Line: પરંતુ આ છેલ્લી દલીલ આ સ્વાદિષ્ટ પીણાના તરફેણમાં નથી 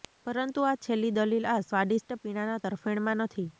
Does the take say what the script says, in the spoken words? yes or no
yes